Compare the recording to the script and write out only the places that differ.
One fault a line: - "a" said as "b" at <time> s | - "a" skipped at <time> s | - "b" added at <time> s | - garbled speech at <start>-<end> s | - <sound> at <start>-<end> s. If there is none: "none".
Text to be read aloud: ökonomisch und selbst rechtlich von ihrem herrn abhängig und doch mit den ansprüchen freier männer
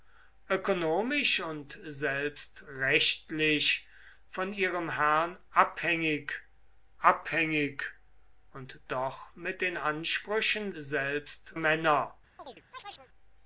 - "abhängig" added at 7.0 s
- "freier" said as "selbst" at 10.7 s
- chirp at 12.4-13.1 s